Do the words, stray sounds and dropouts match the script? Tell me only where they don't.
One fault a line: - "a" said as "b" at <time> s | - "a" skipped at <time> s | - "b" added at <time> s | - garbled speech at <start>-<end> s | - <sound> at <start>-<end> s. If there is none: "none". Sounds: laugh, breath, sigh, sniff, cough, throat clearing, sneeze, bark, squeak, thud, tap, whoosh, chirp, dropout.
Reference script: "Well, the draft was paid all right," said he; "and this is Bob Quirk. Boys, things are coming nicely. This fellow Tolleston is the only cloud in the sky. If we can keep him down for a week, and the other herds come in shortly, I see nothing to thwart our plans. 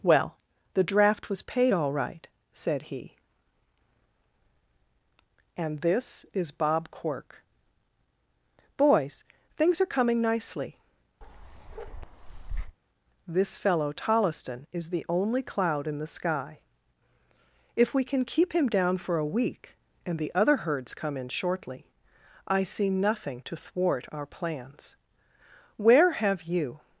- bark at 11.2-12.8 s
- "Where have you" added at 25.8 s